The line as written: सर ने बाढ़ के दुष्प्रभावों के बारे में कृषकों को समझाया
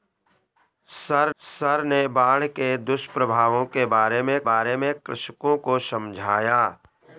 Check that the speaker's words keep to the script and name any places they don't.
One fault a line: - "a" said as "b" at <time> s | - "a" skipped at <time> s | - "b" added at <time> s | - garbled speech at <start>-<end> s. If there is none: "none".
- "सर" added at 1.4 s
- "बारे में" added at 4.4 s